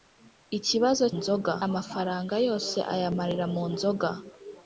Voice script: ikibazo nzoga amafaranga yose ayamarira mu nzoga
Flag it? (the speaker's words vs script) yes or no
no